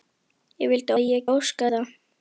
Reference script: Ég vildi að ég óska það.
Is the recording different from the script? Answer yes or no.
no